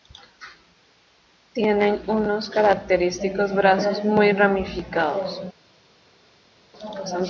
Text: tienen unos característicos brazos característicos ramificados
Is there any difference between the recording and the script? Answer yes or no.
yes